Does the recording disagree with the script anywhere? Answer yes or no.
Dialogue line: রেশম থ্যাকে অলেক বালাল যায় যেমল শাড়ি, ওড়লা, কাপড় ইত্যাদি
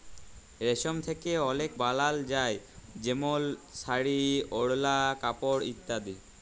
no